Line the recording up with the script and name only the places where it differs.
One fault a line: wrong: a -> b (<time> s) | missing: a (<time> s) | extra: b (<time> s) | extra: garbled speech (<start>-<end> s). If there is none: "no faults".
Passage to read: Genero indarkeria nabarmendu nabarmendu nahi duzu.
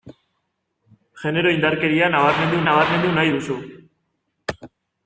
no faults